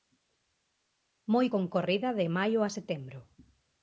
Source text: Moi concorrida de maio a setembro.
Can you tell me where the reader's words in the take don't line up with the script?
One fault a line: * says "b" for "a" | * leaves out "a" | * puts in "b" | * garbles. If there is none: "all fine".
all fine